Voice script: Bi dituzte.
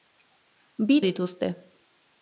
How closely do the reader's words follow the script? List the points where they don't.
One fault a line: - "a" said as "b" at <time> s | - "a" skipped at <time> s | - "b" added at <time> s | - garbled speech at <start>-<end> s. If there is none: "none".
none